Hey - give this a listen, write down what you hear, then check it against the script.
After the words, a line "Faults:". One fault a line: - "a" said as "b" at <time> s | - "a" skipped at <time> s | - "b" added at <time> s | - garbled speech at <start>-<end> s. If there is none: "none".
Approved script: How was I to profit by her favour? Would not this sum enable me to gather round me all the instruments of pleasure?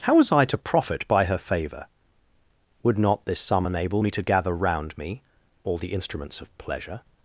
How was I to profit by her favour? Would not this sum enable me to gather round me all the instruments of pleasure?
Faults:
none